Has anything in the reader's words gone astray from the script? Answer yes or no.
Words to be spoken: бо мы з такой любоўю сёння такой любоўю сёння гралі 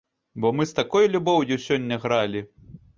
yes